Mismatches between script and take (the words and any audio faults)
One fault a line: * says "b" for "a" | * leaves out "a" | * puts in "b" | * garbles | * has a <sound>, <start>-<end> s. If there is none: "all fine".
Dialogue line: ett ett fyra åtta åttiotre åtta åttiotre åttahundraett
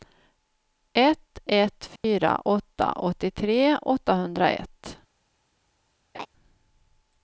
* has a dropout, 2.0-2.0 s
* leaves out "åtta åttiotre"
* has a laugh, 6.1-6.3 s